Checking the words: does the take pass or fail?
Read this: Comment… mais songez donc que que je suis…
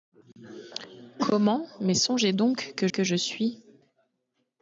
pass